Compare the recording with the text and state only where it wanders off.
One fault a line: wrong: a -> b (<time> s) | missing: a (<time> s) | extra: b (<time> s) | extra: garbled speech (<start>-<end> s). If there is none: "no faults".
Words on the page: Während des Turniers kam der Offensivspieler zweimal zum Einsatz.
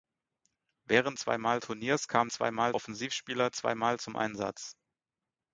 wrong: des -> zweimal (1.1 s)
wrong: der -> zweimal (2.3 s)